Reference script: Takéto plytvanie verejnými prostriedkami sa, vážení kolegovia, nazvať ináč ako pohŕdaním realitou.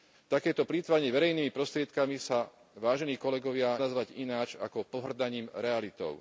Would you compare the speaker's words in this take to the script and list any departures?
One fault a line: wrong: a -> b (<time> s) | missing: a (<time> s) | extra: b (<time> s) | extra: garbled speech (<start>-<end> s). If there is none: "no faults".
no faults